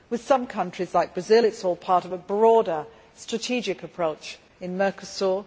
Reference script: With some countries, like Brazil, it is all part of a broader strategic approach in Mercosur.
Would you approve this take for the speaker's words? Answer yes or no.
yes